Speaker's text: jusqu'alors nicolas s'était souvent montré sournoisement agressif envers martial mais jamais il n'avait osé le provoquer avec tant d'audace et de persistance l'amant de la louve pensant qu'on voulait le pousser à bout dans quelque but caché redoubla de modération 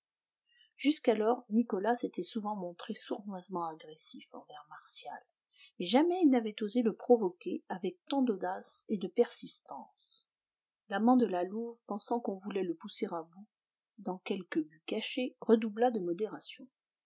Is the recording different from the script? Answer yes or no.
no